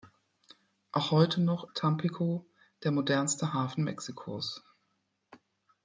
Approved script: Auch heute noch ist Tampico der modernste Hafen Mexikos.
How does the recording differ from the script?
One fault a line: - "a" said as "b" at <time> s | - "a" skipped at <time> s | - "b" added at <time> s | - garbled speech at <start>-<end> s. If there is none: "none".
- "ist" skipped at 1.7 s